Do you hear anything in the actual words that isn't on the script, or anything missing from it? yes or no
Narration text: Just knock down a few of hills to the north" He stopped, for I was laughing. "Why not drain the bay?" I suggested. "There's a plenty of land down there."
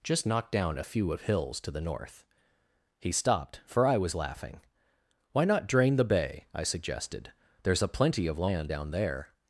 no